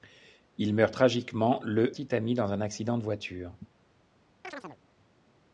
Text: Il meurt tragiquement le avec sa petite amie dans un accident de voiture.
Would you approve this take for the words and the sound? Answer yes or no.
no